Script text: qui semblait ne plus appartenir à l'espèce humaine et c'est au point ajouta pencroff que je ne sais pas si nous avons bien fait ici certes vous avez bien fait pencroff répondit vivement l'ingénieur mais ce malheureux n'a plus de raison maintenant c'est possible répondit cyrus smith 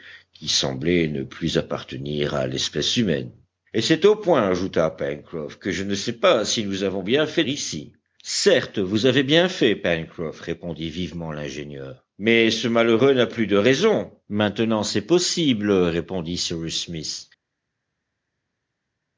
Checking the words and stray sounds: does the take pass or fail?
pass